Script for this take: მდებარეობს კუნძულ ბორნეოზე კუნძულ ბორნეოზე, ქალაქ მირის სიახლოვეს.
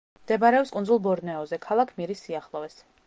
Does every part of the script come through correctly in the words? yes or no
no